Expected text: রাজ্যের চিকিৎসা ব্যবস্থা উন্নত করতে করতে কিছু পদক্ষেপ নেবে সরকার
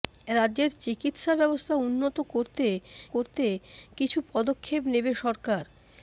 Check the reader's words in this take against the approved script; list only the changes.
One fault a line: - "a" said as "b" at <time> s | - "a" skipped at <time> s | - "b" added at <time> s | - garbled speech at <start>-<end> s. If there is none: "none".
none